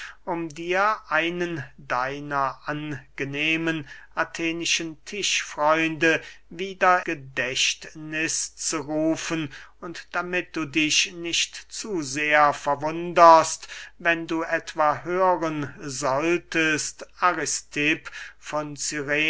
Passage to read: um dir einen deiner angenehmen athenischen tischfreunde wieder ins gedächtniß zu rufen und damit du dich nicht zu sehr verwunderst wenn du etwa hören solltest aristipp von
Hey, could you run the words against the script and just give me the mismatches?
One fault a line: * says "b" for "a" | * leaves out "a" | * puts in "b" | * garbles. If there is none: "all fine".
* leaves out "ins"